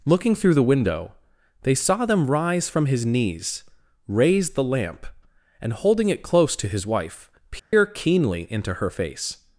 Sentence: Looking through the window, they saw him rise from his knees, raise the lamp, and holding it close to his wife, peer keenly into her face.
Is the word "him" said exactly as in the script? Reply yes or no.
no